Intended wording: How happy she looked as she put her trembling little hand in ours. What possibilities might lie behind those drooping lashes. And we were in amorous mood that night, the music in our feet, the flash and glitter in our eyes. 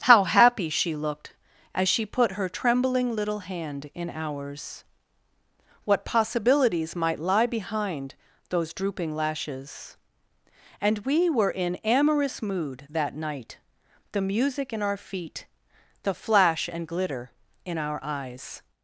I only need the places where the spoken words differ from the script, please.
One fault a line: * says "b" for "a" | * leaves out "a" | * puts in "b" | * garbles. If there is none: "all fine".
all fine